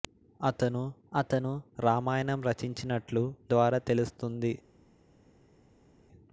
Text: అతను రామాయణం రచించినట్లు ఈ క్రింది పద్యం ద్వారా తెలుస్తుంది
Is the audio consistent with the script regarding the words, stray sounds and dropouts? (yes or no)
no